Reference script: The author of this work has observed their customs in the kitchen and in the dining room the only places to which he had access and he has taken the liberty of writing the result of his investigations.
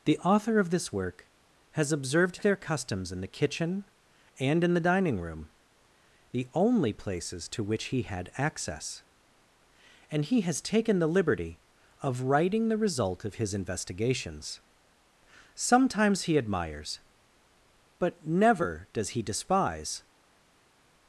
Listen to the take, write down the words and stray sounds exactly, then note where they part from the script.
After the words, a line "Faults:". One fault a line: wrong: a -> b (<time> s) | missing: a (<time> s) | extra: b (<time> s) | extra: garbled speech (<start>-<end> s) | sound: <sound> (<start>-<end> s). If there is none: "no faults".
The author of this work has observed their customs in the kitchen and in the dining room the only places to which he had access and he has taken the liberty of writing the result of his investigations. Sometimes he admires, but never does he despise
Faults:
extra: Sometimes he admires but never does he despise (15.6 s)